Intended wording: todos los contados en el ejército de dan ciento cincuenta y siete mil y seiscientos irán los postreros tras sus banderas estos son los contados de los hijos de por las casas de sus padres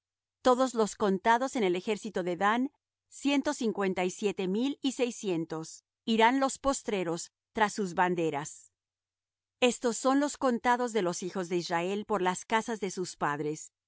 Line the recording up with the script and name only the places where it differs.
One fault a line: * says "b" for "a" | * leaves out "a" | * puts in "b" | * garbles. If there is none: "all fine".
* puts in "israel"